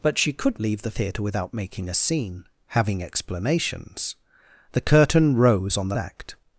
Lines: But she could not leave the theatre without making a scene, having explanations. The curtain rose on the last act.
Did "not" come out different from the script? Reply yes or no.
yes